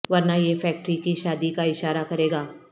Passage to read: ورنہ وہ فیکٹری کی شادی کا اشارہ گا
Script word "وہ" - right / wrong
wrong